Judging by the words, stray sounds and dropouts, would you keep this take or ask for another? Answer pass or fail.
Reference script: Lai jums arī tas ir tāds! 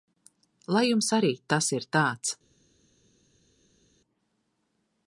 pass